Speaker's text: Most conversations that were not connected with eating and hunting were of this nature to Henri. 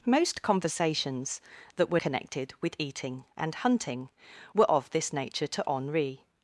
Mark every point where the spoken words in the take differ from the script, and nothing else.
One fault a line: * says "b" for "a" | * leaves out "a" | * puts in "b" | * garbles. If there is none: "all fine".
* leaves out "not"